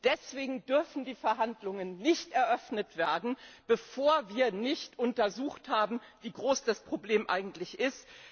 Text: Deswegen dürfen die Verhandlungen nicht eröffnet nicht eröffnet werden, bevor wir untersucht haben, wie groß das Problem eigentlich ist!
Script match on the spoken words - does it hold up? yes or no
no